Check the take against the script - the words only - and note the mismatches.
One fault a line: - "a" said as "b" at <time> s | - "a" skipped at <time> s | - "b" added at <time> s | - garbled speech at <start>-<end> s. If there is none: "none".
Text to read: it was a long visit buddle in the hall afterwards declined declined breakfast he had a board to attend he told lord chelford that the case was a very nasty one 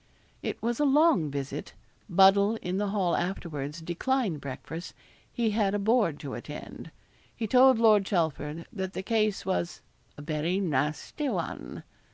- "declined" skipped at 4.4 s